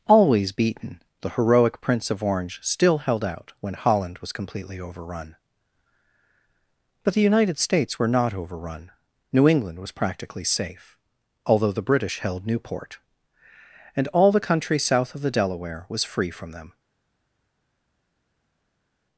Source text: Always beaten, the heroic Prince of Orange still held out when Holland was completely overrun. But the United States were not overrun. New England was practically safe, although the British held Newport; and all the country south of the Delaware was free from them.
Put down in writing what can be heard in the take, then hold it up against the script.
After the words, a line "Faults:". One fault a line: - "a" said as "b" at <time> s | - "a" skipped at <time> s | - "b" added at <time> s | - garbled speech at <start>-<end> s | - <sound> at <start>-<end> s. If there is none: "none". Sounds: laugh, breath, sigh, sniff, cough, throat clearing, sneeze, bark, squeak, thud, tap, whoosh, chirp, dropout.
Always beaten, the heroic Prince of Orange still held out when Holland was completely overrun. But the United States were not overrun. New England was practically safe, although the British held Newport; and all the country south of the Delaware was free from them.
Faults:
none